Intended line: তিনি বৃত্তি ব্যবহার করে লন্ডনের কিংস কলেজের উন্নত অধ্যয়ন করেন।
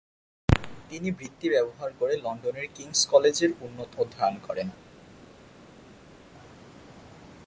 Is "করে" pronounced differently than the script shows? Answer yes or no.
no